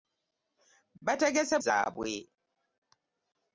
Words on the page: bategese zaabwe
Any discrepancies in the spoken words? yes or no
no